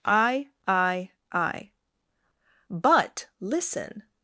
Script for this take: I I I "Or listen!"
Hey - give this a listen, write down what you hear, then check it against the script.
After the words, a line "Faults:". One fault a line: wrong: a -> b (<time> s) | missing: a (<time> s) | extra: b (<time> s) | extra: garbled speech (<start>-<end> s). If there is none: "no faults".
I I I "But listen!"
Faults:
wrong: Or -> But (2.7 s)